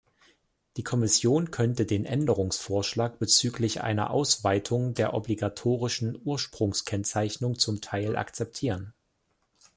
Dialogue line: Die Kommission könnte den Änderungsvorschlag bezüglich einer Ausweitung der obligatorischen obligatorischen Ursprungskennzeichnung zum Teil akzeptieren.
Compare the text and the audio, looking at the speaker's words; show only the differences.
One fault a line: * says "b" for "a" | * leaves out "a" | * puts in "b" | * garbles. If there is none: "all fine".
* leaves out "obligatorischen"